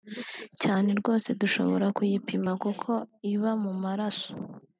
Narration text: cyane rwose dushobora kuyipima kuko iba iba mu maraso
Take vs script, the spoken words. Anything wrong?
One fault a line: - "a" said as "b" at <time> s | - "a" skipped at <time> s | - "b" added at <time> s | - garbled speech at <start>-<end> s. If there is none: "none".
- "iba" skipped at 3.5 s